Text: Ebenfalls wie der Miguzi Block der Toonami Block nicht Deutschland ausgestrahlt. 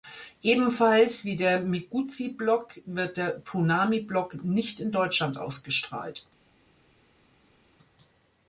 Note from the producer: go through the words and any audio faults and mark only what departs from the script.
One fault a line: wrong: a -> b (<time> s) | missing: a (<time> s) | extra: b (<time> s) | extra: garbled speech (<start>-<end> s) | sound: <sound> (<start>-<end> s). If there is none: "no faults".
extra: wird (2.9 s)
extra: in (4.8 s)